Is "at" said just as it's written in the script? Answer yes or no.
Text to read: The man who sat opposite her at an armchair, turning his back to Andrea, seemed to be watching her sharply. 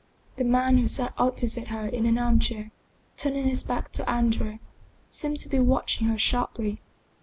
no